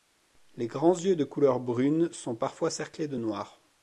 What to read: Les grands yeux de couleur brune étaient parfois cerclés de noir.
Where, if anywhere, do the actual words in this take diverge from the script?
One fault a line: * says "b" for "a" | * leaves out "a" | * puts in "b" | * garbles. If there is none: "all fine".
* says "sont" for "étaient"